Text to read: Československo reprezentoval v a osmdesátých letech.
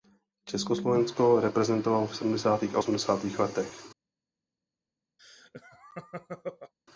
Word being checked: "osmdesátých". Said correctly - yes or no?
yes